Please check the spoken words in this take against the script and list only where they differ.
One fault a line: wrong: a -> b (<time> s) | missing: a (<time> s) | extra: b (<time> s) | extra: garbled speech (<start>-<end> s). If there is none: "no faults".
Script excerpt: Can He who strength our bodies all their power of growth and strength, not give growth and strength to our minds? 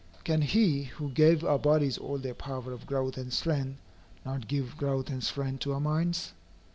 wrong: strength -> gave (1.1 s)